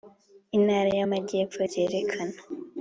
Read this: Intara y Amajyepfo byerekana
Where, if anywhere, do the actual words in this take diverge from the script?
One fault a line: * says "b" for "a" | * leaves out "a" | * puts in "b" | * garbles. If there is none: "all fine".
all fine